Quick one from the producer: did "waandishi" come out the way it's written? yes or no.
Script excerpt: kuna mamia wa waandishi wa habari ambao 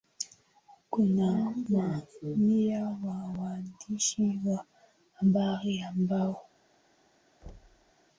yes